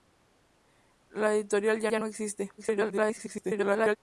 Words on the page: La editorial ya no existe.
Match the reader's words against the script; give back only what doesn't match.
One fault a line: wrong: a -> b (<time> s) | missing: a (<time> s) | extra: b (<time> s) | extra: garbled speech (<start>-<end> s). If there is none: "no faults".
extra: ya (1.9 s)
extra: garbled speech (2.6-4.0 s)